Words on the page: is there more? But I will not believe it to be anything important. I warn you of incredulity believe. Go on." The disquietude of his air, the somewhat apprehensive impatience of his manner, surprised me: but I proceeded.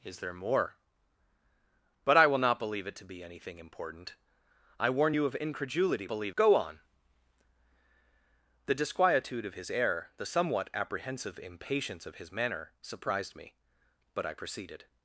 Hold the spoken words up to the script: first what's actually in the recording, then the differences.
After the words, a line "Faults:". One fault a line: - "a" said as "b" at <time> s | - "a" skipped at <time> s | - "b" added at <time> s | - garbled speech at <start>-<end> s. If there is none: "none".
is there more? But I will not believe it to be anything important. I warn you of incredulity believe. Go on." The disquietude of his air, the somewhat apprehensive impatience of his manner, surprised me: but I proceeded.
Faults:
none